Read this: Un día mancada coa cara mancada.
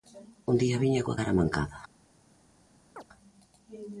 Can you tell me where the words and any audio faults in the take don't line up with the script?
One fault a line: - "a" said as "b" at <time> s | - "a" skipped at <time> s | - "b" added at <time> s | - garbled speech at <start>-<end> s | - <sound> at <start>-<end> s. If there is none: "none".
- "mancada" said as "viña" at 0.8 s
- chirp at 3.0-3.0 s